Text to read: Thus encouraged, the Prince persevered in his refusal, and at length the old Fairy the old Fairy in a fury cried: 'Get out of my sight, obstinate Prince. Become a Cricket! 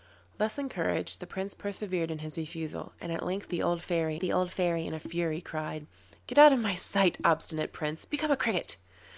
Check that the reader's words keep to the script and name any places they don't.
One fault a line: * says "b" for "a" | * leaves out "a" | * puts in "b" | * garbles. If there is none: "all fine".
all fine